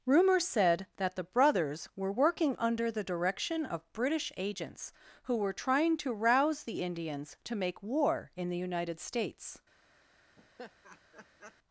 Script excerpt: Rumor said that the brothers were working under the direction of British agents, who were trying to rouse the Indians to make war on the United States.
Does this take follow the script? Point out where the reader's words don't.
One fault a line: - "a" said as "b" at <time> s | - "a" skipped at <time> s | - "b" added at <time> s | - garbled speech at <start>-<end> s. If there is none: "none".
- "on" said as "in" at 8.3 s